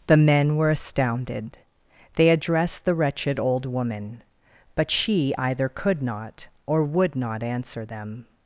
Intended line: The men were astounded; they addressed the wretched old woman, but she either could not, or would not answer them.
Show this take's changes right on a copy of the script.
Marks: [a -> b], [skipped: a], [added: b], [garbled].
The men were astounded; they addressed the wretched old woman, but she either could not, or would not answer them.